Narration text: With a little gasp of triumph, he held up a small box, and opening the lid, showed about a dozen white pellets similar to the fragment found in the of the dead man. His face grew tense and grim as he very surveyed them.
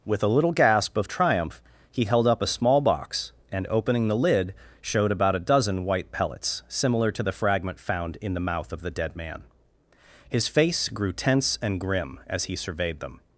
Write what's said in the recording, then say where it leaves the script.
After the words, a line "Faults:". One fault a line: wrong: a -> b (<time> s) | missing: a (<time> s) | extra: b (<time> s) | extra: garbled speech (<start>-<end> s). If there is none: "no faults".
With a little gasp of triumph, he held up a small box, and opening the lid, showed about a dozen white pellets similar to the fragment found in the mouth of the dead man. His face grew tense and grim as he surveyed them.
Faults:
extra: mouth (8.4 s)
missing: very (12.5 s)